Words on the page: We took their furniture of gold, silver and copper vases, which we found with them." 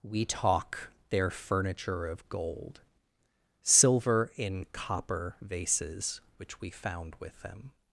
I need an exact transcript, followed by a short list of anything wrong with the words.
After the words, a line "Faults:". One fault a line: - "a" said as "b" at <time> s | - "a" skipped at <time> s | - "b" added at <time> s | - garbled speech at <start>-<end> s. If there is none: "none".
We talk their furniture of gold, silver in copper vases, which we found with them."
Faults:
- "took" said as "talk" at 0.2 s
- "and" said as "in" at 4.4 s